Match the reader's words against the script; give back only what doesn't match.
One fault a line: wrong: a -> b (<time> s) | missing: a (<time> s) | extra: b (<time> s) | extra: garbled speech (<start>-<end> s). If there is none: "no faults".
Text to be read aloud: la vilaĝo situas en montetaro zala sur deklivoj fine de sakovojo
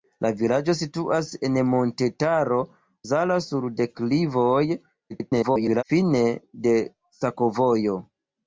extra: garbled speech (5.1-5.8 s)